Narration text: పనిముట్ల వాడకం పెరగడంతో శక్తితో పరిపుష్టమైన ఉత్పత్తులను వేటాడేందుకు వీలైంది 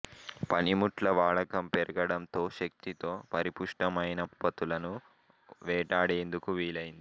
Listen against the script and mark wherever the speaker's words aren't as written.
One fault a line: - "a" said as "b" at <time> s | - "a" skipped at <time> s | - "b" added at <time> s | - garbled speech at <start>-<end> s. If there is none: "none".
none